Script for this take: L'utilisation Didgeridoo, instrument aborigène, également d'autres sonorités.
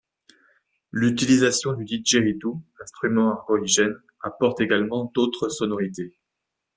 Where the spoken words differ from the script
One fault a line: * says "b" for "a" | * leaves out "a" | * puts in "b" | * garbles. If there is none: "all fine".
* puts in "du"
* puts in "apporte"